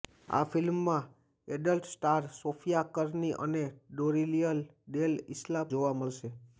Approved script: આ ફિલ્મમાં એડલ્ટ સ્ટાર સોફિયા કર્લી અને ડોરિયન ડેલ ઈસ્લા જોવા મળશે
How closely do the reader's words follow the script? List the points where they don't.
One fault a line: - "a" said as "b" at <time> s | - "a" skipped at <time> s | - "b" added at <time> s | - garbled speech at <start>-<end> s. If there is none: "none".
none